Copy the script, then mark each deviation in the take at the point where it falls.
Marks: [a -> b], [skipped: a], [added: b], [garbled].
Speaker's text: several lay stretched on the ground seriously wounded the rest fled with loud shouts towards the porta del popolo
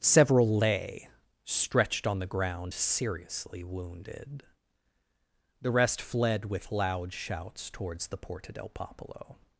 several lay stretched on the ground seriously wounded the rest fled with loud shouts towards the porta del popolo